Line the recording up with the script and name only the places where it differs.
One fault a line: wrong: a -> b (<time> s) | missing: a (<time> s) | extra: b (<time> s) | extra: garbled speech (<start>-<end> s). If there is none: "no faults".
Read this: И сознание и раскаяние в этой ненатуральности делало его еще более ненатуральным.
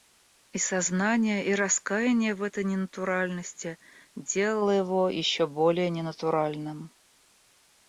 no faults